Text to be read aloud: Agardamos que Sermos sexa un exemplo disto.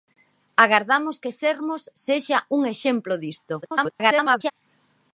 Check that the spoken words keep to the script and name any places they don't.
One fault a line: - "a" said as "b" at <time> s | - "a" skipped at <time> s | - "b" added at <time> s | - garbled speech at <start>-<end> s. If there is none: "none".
- garbled speech at 3.6-4.5 s